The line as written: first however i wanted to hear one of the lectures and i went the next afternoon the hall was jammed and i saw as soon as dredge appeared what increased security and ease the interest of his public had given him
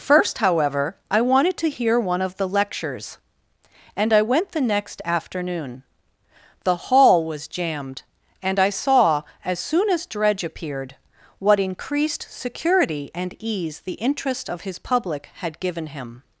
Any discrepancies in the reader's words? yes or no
no